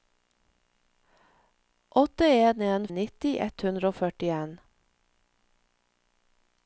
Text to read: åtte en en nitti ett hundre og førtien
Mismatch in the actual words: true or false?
false